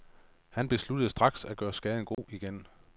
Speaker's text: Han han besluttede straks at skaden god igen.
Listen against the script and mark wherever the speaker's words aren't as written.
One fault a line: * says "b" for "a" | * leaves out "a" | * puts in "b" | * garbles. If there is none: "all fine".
* leaves out "han"
* puts in "gøre"